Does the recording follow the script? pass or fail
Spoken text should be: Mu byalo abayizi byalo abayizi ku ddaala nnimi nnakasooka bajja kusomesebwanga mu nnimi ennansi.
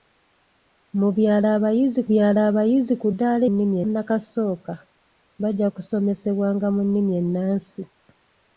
pass